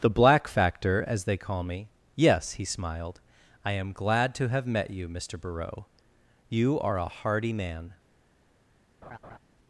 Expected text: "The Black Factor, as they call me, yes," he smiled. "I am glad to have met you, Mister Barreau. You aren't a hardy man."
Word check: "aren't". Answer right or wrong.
wrong